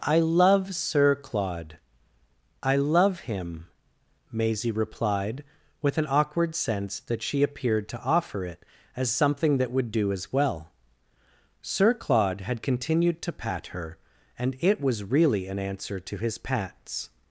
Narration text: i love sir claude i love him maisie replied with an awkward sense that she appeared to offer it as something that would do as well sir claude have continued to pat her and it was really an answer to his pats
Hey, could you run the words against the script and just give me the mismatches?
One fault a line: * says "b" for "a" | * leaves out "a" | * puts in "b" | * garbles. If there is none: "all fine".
* says "had" for "have"